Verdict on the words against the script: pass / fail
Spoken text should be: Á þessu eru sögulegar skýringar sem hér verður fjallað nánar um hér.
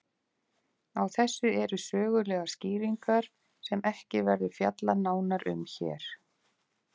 fail